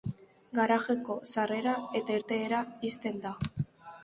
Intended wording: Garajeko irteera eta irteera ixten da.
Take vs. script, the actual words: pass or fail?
fail